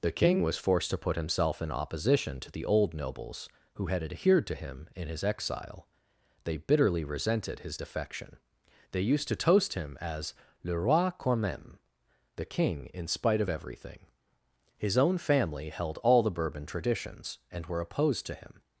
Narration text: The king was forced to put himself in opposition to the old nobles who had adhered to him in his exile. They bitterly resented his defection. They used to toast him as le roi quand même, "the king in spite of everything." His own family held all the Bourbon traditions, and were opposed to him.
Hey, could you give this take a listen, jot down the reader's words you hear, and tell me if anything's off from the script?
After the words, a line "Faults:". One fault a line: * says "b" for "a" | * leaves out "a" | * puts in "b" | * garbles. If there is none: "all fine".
The king was forced to put himself in opposition to the old nobles who had adhered to him in his exile. They bitterly resented his defection. They used to toast him as le roi quand même, "the king in spite of everything." His own family held all the Bourbon traditions, and were opposed to him.
Faults:
all fine